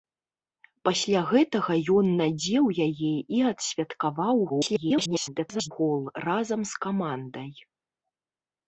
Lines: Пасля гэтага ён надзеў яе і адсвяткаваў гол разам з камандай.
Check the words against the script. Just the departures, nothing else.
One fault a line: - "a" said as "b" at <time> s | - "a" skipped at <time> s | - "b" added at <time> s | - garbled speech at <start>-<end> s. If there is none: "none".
- garbled speech at 4.5-5.7 s